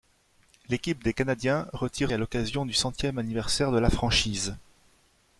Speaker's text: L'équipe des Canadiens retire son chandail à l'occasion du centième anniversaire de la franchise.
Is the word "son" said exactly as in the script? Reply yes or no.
no